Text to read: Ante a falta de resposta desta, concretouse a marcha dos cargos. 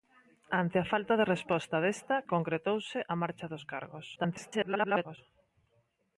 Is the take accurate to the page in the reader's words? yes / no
no